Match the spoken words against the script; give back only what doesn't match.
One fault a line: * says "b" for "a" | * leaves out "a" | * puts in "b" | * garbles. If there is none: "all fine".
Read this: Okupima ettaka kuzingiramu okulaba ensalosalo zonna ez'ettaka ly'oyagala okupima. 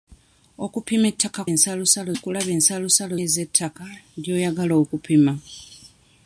* says "ensalosalo" for "kuzingiramu"
* leaves out "zonna"